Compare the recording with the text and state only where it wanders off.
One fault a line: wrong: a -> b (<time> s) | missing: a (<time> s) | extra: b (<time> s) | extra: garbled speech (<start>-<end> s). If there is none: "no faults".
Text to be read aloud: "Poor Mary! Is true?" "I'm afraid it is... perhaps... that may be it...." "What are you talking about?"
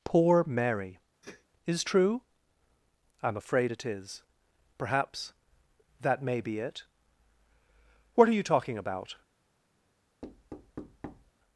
no faults